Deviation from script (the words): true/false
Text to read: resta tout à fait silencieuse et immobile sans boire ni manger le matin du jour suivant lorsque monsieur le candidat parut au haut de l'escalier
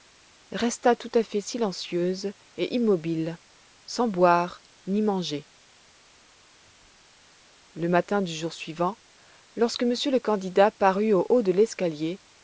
false